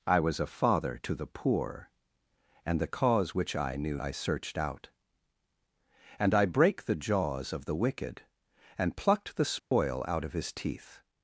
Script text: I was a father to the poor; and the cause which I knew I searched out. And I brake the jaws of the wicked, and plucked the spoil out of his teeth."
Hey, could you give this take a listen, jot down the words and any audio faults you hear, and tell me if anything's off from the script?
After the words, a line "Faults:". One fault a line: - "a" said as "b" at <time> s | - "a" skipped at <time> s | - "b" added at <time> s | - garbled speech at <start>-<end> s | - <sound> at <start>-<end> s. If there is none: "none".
I was a father to the poor; and the cause which I knew I searched out. And I brake the jaws of the wicked, and plucked the spoil out of his teeth."
Faults:
- dropout at 9.6-9.7 s